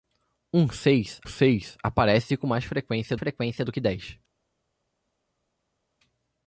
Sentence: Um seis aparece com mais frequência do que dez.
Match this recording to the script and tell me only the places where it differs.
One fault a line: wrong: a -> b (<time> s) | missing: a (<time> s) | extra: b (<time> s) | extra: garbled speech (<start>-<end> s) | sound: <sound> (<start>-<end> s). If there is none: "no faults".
extra: seis (1.2 s)
extra: frequência (3.2 s)